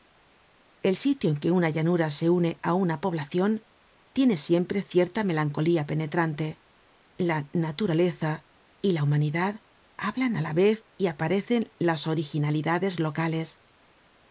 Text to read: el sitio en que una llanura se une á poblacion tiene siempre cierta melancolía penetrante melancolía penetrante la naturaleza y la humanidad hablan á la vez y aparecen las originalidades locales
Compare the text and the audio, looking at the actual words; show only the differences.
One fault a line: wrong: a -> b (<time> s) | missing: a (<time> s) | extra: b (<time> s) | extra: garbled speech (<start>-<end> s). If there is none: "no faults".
extra: una (2.8 s)
missing: melancolía penetrante (6.5 s)